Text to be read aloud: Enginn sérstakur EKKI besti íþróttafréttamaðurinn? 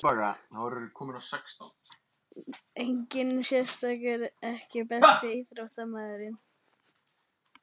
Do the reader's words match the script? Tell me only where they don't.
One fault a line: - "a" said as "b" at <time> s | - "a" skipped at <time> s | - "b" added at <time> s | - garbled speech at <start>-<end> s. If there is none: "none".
none